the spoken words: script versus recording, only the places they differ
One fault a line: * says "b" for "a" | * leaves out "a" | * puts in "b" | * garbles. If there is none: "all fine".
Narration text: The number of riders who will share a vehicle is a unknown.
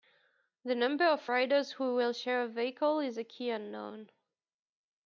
* puts in "key"